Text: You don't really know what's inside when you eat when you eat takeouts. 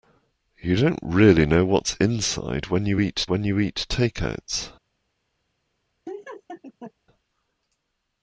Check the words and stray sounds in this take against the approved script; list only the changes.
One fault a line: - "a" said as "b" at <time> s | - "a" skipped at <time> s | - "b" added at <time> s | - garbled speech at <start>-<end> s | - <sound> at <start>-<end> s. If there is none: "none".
- laugh at 6.1-6.9 s